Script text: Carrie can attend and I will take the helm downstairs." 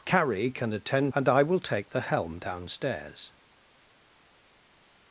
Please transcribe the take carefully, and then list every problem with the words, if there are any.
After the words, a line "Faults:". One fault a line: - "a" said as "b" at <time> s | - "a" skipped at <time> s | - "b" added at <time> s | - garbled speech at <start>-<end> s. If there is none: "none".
Carrie can attend and I will take the helm downstairs."
Faults:
none